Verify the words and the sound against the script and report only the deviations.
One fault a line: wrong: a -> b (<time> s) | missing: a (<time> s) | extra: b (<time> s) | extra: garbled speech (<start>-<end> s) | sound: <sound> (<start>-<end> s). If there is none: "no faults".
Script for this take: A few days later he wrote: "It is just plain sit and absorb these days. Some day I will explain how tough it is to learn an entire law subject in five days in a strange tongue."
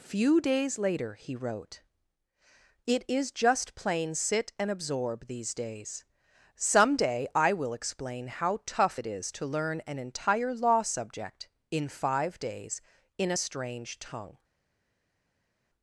missing: A (0.0 s)